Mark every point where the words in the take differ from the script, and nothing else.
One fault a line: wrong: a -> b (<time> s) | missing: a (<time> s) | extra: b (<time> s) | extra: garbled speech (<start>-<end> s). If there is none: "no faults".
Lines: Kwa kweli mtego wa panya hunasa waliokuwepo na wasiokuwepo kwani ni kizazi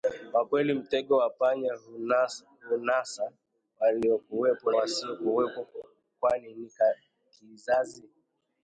missing: na (4.7 s)